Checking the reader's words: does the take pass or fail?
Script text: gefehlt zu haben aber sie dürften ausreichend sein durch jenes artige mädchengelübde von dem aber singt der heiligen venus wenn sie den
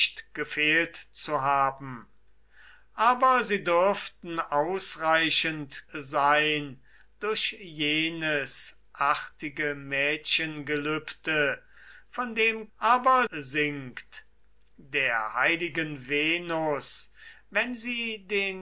pass